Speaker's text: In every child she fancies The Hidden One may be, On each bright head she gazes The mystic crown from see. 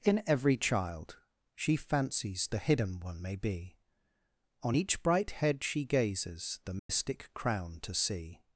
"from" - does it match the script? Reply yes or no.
no